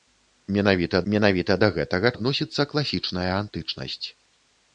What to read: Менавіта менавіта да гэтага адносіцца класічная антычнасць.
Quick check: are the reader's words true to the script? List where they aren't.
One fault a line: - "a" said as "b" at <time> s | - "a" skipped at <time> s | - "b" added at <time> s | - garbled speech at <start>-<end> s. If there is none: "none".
none